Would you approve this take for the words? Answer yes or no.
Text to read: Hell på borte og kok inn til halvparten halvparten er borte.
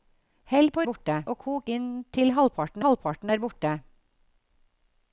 yes